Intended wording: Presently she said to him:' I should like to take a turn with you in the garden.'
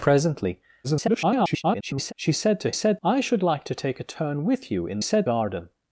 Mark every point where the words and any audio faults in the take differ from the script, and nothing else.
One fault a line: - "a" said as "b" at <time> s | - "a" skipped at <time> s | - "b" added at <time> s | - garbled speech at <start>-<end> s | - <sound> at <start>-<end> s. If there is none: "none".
- garbled speech at 0.8-2.1 s
- "him" said as "said" at 2.7 s
- "the" said as "said" at 5.0 s